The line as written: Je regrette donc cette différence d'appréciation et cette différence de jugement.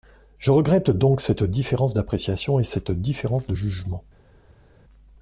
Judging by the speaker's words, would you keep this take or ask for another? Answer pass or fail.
pass